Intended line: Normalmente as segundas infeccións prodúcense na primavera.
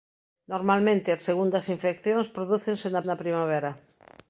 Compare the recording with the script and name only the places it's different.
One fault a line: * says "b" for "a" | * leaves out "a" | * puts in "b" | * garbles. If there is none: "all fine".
* puts in "na"